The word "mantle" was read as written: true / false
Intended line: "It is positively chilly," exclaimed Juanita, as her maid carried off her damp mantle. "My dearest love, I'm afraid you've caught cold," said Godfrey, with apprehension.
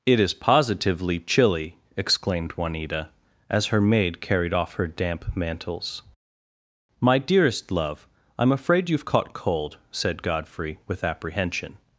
false